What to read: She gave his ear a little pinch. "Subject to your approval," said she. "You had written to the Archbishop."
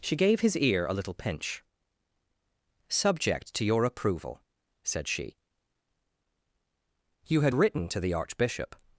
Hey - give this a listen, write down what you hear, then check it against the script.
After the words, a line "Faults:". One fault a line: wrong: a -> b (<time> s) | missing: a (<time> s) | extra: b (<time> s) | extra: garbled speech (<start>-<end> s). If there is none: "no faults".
She gave his ear a little pinch. "Subject to your approval," said she. "You had written to the Archbishop."
Faults:
no faults